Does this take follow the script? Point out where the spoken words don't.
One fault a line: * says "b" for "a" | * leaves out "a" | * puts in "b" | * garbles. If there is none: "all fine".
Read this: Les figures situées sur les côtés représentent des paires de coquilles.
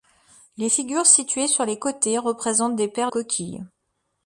* leaves out "de"